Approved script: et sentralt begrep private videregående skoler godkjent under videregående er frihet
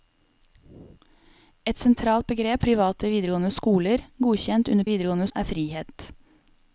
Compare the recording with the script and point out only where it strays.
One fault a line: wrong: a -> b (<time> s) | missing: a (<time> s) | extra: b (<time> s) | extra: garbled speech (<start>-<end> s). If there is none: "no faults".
no faults